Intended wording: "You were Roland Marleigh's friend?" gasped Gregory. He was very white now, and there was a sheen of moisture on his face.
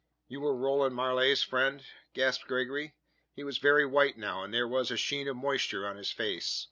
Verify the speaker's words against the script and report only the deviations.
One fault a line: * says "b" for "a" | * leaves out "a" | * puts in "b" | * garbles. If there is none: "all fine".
all fine